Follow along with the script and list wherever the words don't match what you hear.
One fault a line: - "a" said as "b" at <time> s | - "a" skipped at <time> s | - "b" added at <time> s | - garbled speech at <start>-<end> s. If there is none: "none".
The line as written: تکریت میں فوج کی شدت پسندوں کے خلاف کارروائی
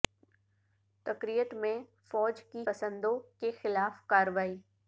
- "شدت" skipped at 2.6 s